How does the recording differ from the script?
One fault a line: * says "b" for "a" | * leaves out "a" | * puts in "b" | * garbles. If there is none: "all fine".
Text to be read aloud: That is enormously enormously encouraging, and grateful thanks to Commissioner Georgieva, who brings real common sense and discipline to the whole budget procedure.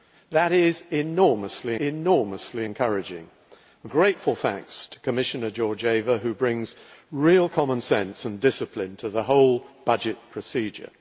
all fine